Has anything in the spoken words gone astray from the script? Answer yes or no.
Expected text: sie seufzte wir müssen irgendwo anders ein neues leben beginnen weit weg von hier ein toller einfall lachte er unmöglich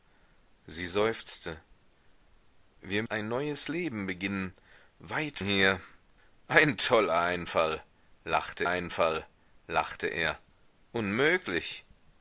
yes